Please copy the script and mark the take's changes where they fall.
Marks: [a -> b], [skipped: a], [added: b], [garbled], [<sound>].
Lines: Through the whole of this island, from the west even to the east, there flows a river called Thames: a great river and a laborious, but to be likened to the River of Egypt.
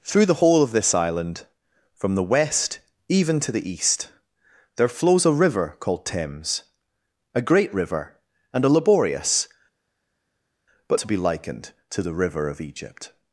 Through the whole of this island, from the west even to the east, there flows a river called Thames: a great river and a laborious, but to be likened to the River of Egypt.